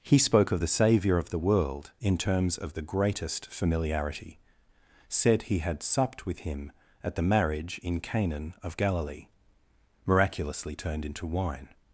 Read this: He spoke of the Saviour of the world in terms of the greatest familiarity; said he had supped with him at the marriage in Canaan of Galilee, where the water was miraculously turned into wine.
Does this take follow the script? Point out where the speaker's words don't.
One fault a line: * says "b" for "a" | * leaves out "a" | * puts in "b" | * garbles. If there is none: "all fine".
* leaves out "where the water was"